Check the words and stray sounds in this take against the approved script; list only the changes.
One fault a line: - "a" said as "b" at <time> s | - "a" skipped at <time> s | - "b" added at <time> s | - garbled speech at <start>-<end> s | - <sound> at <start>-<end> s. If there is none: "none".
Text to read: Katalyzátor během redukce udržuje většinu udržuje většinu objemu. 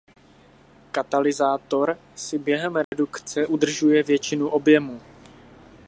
- "si" added at 2.1 s
- dropout at 2.8-2.9 s
- "udržuje většinu" skipped at 4.5 s